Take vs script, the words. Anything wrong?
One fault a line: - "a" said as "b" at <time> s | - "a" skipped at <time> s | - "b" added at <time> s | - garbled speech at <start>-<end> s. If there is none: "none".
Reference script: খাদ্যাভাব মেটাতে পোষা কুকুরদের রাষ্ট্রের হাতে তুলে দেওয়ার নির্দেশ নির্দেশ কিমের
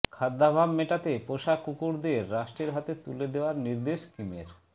- "নির্দেশ" skipped at 4.0 s